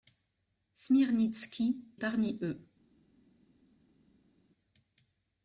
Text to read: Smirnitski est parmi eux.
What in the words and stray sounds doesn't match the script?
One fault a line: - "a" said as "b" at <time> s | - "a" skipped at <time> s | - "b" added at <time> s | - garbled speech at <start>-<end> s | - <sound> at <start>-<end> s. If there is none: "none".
- "est" skipped at 1.9 s